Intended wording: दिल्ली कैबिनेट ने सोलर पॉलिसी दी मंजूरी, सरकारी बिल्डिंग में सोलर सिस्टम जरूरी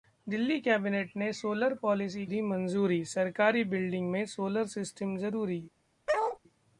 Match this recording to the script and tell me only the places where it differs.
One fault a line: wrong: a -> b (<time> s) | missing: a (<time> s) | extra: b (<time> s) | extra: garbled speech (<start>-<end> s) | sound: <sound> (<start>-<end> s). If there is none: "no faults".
sound: bark (6.1-6.4 s)